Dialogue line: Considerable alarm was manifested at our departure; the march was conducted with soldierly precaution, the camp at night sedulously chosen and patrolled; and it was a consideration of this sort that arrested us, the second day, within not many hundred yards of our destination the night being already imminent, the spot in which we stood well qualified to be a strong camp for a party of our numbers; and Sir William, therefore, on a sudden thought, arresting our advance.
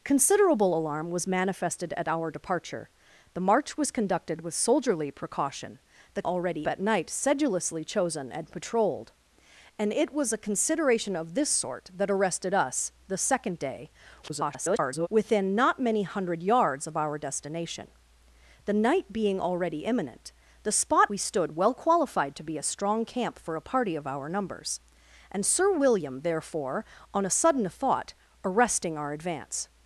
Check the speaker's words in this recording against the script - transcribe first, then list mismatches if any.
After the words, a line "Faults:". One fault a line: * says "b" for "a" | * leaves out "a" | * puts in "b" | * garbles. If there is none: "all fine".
Considerable alarm was manifested at our departure; the march was conducted with soldierly precaution, the already at night sedulously chosen and patrolled; and it was a consideration of this sort that arrested us, the second day, [garbled] within not many hundred yards of our destination the night being already imminent, the spot we stood well qualified to be a strong camp for a party of our numbers; and Sir William, therefore, on a sudden thought, arresting our advance.
Faults:
* says "already" for "camp"
* garbles
* leaves out "in which"